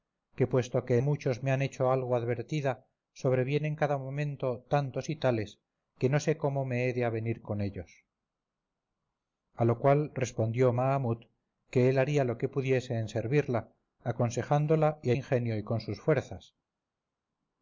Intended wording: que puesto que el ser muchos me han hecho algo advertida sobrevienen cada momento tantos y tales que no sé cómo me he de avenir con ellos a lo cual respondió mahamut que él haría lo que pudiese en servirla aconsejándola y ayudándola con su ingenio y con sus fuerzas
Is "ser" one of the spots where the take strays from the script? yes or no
yes